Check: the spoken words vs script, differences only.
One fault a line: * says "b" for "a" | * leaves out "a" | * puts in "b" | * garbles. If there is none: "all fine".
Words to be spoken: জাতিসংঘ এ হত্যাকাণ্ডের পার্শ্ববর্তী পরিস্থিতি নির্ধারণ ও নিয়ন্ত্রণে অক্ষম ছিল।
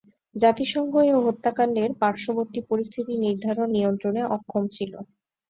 * leaves out "ও"